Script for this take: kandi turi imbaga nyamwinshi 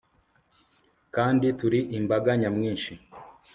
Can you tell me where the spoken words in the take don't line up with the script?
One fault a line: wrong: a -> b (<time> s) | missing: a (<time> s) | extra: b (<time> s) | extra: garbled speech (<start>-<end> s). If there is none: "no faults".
no faults